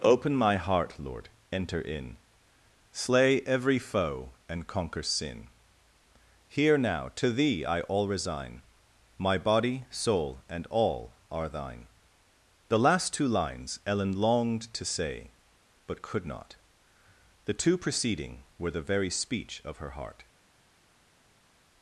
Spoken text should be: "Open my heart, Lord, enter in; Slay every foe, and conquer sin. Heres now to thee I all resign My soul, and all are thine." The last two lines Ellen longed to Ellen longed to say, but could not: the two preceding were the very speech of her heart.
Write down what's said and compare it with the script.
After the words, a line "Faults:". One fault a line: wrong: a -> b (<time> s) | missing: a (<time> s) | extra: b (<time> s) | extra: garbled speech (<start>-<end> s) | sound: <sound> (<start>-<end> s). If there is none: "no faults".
"Open my heart, Lord, enter in; Slay every foe, and conquer sin. Here now to thee I all resign My body, soul, and all are thine." The last two lines Ellen longed to say, but could not: the two preceding were the very speech of her heart.
Faults:
wrong: Heres -> Here (6.5 s)
extra: body (9.4 s)
missing: Ellen longed to (14.8 s)